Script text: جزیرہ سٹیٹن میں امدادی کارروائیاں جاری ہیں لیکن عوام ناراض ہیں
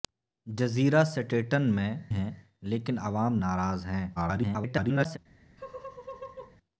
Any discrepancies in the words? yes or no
yes